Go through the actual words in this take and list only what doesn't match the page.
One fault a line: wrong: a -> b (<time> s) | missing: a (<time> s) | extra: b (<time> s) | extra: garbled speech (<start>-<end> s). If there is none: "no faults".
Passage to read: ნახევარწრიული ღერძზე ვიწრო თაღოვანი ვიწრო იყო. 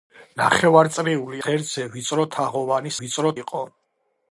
no faults